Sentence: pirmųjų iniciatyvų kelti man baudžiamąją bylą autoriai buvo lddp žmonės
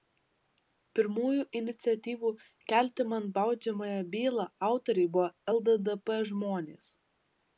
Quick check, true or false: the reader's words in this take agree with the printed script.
true